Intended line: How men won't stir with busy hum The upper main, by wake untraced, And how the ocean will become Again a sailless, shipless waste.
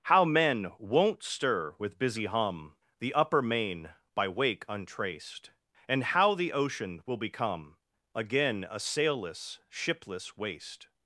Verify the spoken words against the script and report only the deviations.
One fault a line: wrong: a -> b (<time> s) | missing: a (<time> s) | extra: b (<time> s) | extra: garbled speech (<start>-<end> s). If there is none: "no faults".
no faults